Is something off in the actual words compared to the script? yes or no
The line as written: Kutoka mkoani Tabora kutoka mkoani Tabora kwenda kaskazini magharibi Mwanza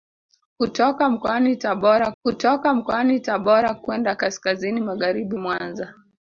no